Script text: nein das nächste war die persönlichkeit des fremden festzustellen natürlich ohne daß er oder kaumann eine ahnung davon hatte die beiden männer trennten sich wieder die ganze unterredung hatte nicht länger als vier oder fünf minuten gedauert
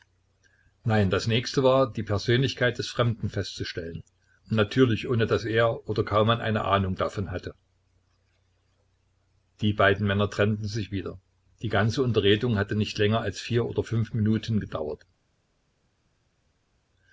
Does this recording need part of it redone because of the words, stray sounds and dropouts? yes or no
no